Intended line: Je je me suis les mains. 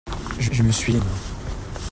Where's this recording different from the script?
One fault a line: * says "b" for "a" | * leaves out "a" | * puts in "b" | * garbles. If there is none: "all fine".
all fine